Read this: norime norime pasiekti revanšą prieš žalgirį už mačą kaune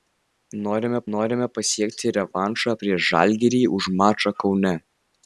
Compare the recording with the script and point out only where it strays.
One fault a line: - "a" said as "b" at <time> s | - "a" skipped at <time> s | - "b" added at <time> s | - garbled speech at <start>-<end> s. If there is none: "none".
none